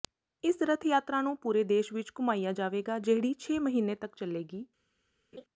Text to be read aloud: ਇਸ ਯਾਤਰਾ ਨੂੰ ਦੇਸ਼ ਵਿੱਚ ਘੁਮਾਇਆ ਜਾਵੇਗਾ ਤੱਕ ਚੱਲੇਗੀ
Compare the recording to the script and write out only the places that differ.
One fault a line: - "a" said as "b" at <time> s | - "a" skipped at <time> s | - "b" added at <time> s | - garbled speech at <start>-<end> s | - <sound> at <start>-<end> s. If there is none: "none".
- "ਰੱਥ" added at 0.6 s
- "ਪੂਰੇ" added at 1.4 s
- "ਜਿਹੜੀ ਛੇ ਮਹੀਨੇ" added at 3.0 s
- laugh at 5.3-5.4 s